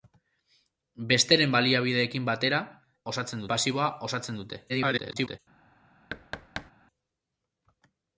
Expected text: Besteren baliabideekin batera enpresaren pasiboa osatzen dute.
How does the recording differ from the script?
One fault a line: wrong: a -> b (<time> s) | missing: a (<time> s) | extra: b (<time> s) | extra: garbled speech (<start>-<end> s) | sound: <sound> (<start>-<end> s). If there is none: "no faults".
wrong: enpresaren -> osatzen (3.1 s)
extra: garbled speech (4.7-5.4 s)
sound: thud (6.1-6.7 s)